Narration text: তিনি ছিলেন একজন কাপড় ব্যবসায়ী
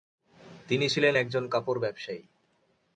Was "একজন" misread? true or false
false